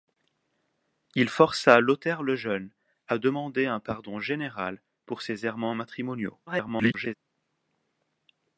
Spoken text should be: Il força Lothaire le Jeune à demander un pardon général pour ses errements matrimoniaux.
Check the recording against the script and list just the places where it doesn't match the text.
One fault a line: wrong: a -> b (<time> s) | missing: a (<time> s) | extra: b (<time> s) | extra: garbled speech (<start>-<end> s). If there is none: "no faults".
extra: garbled speech (6.5-7.1 s)